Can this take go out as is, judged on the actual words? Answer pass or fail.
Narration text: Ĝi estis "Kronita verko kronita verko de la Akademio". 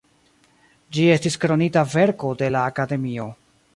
fail